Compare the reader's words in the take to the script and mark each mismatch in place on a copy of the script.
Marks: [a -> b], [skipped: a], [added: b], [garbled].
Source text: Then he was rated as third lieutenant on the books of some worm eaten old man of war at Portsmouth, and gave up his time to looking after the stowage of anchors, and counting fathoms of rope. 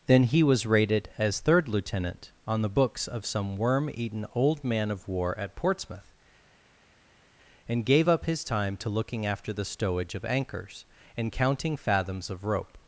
Then he was rated as third lieutenant on the books of some worm eaten old man of war at Portsmouth, and gave up his time to looking after the stowage of anchors, and counting fathoms of rope.